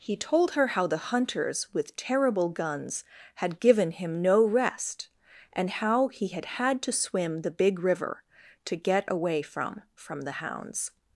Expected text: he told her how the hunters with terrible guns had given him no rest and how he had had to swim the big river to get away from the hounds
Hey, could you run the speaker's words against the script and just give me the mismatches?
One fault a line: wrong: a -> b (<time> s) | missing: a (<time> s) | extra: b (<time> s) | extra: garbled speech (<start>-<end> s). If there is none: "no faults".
extra: from (9.9 s)